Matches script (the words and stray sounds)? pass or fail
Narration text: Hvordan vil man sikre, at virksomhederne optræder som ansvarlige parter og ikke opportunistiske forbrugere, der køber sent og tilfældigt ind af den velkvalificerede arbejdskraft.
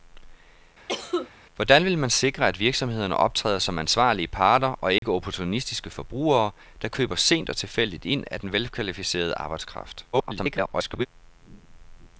fail